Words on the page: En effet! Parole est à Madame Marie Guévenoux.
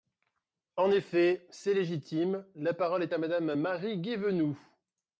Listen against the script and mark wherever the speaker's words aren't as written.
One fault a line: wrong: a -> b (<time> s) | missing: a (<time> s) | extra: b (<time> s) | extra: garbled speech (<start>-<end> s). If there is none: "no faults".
extra: C'est légitime La (1.5 s)